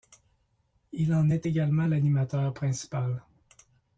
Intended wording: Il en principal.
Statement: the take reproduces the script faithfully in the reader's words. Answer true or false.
false